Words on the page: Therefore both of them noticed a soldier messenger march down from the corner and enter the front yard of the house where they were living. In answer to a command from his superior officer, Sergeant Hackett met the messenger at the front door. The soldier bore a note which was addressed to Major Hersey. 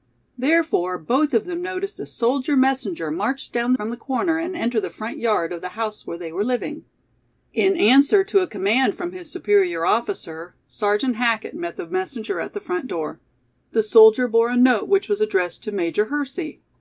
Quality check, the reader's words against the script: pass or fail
pass